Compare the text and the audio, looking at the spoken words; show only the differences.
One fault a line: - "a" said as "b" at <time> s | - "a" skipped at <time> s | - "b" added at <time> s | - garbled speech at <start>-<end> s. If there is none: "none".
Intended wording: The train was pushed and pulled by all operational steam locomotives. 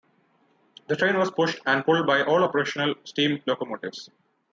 none